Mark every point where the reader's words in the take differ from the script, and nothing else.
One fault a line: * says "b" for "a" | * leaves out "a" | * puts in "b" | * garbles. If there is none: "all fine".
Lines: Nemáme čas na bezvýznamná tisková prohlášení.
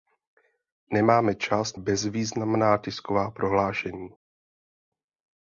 * leaves out "na"